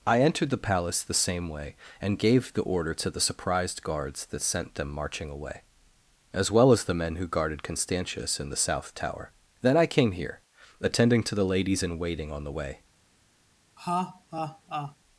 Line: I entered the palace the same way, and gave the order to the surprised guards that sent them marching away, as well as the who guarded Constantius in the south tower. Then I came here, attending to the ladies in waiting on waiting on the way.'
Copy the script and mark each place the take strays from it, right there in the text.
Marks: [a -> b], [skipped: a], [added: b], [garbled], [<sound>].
I entered the palace the same way, and gave the order to the surprised guards that sent them marching away, as well as the [added: men] who guarded Constantius in the south tower. Then I came here, attending to the ladies in waiting on [skipped: waiting on] the way.' [laugh]